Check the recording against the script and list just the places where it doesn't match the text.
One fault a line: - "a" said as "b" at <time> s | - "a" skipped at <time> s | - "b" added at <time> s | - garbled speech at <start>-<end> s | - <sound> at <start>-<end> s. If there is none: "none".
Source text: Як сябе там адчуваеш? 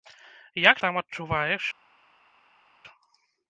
- "сябе" skipped at 0.8 s